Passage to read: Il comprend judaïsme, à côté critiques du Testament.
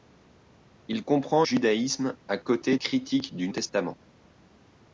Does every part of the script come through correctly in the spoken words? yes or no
yes